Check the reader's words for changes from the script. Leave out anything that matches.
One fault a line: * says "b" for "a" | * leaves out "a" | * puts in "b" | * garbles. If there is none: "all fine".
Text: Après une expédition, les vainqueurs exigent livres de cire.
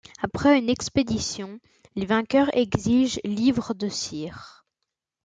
all fine